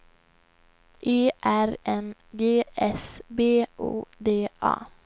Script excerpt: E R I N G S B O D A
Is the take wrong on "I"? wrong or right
wrong